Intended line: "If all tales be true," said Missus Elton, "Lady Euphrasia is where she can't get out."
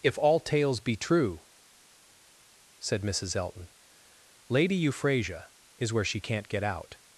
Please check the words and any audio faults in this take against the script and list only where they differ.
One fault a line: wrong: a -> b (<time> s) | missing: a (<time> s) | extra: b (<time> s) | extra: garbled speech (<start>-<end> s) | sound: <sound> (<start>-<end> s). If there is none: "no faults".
no faults